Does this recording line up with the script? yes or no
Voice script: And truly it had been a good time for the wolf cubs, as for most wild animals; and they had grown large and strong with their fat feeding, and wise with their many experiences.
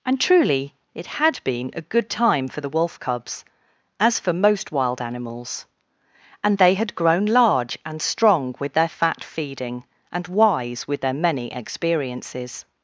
yes